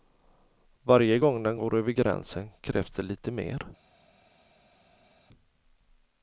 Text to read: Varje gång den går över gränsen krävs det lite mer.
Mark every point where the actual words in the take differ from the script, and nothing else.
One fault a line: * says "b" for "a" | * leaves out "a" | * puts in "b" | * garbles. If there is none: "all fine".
all fine